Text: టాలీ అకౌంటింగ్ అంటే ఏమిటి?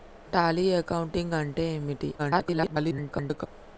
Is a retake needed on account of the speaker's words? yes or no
yes